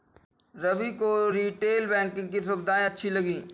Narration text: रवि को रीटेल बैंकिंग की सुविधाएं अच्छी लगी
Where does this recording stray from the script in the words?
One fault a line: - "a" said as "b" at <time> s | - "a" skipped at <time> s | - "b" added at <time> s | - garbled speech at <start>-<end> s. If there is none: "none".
none